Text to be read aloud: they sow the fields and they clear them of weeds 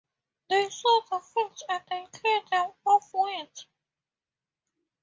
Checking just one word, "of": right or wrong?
right